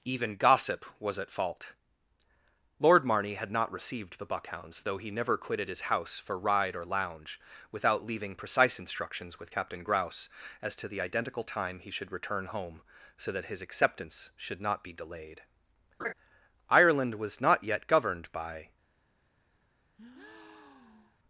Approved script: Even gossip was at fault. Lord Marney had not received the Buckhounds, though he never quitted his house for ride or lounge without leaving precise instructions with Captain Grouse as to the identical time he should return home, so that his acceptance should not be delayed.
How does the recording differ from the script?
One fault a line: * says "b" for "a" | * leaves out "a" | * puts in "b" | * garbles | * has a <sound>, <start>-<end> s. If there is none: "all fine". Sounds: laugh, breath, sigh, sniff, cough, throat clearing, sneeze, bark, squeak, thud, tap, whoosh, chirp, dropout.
* has a laugh, 16.0-16.1 s
* puts in "Ireland was not yet governed by"
* has a breath, 20.0-21.2 s